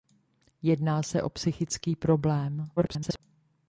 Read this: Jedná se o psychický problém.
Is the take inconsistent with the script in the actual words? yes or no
yes